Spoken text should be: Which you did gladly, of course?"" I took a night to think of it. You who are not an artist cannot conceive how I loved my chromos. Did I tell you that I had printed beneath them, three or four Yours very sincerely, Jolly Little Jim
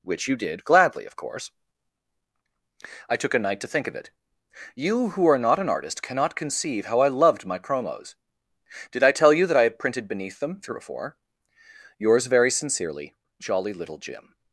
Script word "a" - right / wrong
right